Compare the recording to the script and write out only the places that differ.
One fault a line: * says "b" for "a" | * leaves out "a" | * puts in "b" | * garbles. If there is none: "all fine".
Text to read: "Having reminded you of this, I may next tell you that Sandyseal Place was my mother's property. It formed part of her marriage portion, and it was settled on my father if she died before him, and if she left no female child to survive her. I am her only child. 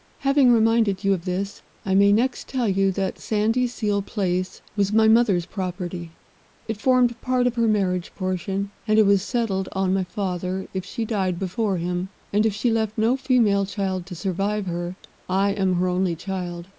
all fine